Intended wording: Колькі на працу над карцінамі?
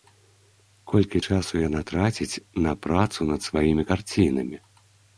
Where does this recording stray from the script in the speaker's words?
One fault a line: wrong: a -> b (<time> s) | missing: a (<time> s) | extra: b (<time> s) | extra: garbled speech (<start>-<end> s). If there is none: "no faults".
extra: часу яна траціць (1.3 s)
extra: сваімі (3.5 s)